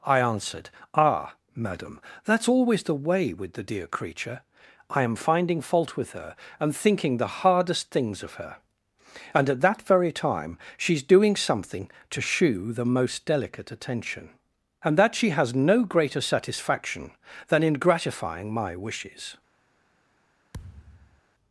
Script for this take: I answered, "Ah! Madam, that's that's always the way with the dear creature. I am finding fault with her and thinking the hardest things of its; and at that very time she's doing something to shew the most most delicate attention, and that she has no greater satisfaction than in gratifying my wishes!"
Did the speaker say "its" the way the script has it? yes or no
no